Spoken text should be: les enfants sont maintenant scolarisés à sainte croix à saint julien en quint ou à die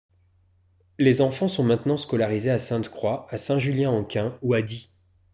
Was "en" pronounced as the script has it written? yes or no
yes